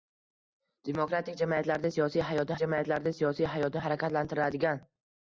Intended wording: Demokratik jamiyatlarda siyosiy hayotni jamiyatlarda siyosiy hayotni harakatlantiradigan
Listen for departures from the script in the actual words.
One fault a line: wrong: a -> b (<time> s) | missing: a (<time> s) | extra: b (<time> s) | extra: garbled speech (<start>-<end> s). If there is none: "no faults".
no faults